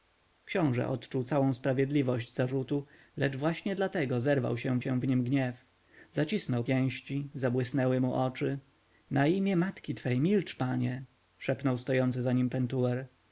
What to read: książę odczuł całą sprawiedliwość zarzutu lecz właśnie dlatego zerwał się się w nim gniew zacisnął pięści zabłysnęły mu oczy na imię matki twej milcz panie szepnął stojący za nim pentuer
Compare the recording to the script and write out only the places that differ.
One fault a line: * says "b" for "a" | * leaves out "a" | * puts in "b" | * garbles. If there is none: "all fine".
all fine